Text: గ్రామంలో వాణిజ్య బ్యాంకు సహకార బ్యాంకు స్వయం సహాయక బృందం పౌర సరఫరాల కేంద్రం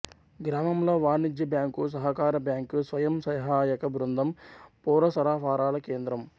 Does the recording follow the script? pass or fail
pass